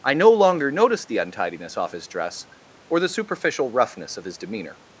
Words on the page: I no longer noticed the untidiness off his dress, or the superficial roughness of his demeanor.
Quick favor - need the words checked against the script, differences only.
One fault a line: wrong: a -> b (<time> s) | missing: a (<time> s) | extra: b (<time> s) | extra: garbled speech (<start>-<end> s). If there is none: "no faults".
no faults